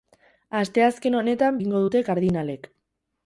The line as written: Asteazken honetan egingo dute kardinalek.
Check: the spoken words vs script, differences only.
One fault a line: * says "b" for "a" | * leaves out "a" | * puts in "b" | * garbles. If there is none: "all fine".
all fine